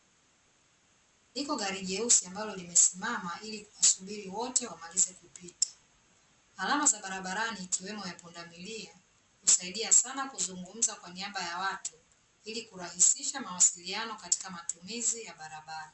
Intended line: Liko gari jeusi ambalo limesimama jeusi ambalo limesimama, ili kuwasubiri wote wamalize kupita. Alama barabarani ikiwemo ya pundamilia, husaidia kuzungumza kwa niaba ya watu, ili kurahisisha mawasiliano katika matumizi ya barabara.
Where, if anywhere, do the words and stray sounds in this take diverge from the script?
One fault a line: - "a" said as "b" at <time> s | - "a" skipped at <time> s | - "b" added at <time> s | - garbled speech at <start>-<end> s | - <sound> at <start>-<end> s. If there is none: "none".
- "jeusi ambalo limesimama" skipped at 3.4 s
- "za" added at 6.9 s
- "sana" added at 9.9 s